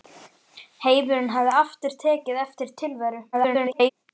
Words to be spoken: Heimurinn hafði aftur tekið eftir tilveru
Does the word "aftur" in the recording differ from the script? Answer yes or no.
no